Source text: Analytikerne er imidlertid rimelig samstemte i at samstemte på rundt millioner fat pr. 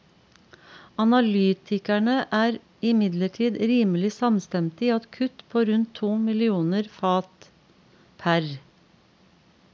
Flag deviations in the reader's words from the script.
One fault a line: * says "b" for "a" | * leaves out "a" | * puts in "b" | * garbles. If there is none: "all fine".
* says "kutt" for "samstemte"
* puts in "to"